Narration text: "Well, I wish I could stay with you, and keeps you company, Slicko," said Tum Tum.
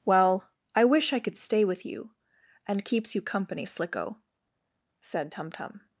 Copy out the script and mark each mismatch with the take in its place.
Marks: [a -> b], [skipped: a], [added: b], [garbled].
"Well, I wish I could stay with you, and keeps you company, Slicko," said Tum Tum.